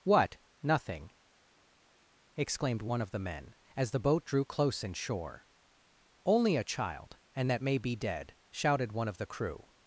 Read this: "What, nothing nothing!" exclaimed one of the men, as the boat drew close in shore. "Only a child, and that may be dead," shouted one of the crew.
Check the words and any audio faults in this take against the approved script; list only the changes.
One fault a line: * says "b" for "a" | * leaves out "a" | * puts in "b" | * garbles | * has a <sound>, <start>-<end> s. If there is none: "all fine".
* leaves out "nothing"